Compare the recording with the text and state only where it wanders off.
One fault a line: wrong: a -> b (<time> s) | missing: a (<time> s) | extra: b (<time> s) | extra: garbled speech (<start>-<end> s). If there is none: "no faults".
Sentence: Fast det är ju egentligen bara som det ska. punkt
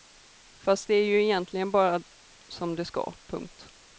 no faults